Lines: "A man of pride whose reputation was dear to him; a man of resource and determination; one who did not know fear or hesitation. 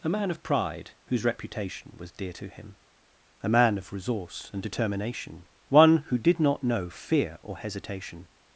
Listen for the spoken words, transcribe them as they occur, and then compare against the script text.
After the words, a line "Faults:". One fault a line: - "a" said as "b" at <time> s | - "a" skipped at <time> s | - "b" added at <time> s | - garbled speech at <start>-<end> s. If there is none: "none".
"A man of pride whose reputation was dear to him; a man of resource and determination; one who did not know fear or hesitation.
Faults:
none